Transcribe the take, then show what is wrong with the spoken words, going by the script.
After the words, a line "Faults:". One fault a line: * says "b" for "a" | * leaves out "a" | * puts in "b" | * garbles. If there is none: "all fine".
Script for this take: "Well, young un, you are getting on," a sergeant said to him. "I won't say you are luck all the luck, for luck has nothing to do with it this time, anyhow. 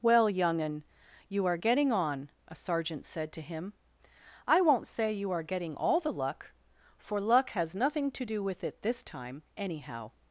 "Well, young un, you are getting on," a sergeant said to him. "I won't say you are getting all the luck, for luck has nothing to do with it this time, anyhow.
Faults:
* says "getting" for "luck"